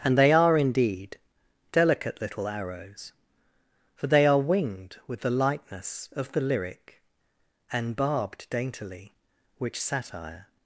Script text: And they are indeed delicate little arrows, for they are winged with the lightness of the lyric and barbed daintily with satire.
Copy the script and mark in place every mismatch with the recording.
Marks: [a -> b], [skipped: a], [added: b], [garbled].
And they are indeed delicate little arrows, for they are winged with the lightness of the lyric and barbed daintily [with -> which] satire.